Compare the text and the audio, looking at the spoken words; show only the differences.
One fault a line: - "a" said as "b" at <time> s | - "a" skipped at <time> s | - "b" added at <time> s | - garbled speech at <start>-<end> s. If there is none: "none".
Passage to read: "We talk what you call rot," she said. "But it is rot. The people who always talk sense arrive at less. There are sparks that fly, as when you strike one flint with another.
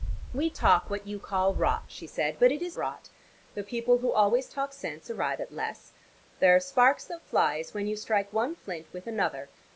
none